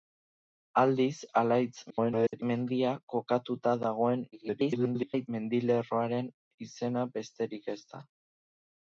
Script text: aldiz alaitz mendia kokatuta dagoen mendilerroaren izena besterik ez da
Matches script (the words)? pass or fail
fail